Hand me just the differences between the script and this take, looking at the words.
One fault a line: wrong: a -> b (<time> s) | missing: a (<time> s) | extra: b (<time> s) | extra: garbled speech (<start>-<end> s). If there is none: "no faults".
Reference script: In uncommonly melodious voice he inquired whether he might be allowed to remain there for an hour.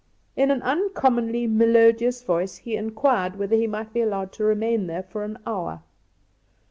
extra: an (0.5 s)